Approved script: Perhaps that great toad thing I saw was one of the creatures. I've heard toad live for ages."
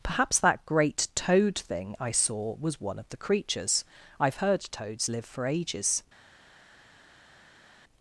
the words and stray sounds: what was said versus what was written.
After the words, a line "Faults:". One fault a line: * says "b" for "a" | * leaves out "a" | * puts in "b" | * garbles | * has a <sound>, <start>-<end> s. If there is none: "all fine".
Perhaps that great toad thing I saw was one of the creatures. I've heard toads live for ages."
Faults:
* says "toads" for "toad"